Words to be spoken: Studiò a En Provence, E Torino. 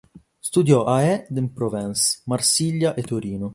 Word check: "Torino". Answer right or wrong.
right